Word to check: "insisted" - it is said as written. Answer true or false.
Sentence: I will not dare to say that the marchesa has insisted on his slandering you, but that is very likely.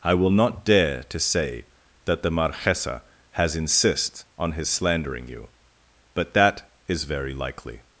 false